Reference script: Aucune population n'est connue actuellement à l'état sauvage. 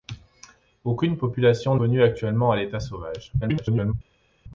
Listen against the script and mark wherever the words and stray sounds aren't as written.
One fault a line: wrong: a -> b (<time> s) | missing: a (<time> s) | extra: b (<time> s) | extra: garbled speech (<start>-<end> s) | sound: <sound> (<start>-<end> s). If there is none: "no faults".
missing: n'est (1.8 s)
extra: garbled speech (3.4-3.9 s)